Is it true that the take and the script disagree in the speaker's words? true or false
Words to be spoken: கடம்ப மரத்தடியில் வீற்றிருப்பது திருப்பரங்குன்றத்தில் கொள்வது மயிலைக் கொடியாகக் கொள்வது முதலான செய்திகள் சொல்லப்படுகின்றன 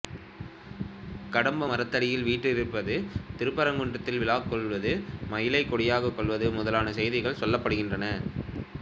true